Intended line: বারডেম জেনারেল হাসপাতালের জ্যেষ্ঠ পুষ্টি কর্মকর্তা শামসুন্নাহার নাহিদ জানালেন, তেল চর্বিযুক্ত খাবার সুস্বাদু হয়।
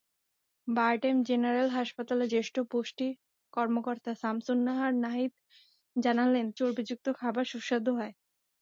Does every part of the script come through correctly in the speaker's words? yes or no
no